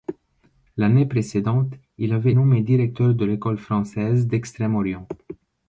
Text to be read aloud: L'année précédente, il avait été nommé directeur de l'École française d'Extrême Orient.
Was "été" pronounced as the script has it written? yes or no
no